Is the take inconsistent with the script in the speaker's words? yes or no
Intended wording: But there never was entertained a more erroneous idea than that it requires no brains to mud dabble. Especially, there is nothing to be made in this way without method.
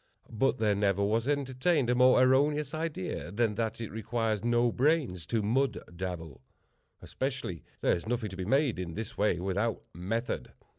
no